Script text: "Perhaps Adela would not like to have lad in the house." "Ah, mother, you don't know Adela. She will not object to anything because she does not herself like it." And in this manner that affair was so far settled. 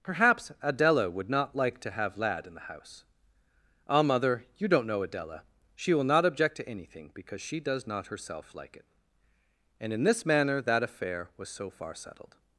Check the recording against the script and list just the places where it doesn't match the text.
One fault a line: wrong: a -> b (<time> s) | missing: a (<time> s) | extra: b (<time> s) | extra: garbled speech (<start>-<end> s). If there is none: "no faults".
no faults